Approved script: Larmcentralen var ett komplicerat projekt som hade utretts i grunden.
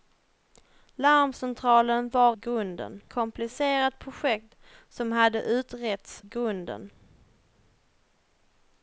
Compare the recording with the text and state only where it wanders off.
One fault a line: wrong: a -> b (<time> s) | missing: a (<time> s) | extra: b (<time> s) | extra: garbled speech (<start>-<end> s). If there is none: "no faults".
wrong: ett -> grunden (2.3 s)
missing: i (6.2 s)